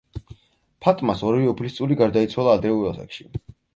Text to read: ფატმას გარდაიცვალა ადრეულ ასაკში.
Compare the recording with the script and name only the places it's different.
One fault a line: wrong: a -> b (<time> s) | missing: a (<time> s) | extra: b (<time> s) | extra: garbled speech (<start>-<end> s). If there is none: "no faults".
extra: ორივე უფლისწული (1.3 s)